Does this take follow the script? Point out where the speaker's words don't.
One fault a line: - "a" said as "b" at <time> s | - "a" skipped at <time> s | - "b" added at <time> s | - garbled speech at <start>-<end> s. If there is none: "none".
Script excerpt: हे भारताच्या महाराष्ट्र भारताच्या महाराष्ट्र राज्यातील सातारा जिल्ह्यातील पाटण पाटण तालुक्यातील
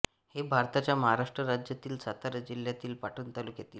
- "भारताच्या महाराष्ट्र" skipped at 1.4 s
- "पाटण" skipped at 3.3 s